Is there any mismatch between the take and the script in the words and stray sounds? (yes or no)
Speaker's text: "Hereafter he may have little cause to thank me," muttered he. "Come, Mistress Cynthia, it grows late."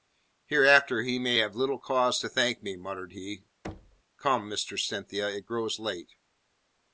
yes